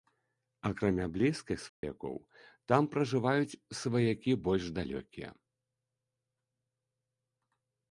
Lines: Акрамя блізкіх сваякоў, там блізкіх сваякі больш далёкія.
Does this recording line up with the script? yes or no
no